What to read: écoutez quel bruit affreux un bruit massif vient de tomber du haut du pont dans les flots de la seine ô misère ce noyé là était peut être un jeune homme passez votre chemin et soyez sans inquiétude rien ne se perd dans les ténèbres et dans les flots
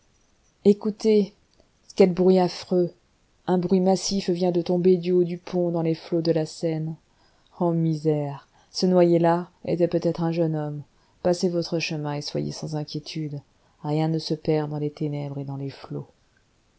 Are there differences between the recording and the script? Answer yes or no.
no